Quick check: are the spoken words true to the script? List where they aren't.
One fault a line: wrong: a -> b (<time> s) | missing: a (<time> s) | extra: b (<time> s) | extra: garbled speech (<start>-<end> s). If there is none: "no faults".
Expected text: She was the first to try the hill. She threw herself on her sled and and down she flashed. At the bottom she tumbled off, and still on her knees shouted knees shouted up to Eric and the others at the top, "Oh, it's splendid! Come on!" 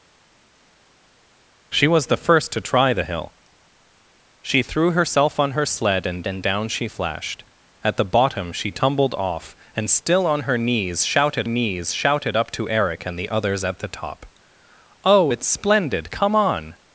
no faults